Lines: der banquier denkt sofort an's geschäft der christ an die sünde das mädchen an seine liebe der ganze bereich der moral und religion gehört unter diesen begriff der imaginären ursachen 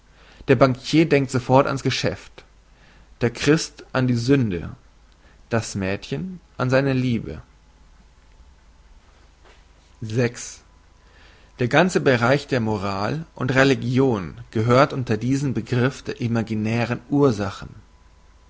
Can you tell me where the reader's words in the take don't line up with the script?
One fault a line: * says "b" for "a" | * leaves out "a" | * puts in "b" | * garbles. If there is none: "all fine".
all fine